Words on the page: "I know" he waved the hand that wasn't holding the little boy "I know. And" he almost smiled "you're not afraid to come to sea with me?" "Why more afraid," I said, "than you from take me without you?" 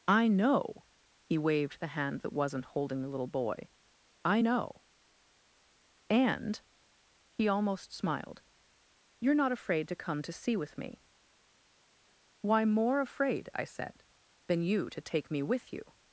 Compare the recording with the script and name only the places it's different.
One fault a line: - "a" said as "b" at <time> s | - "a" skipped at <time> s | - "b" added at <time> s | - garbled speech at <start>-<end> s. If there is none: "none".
- "from" said as "to" at 14.9 s
- "without" said as "with" at 15.4 s